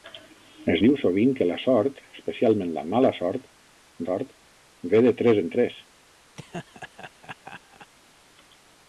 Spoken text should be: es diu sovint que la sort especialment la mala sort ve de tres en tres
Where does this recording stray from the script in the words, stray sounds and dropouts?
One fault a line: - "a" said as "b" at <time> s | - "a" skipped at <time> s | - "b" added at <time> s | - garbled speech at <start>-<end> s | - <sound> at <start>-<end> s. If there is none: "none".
- "sort" added at 4.0 s
- laugh at 6.3-7.9 s